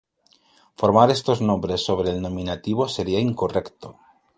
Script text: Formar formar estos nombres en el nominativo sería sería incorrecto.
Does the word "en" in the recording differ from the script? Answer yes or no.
yes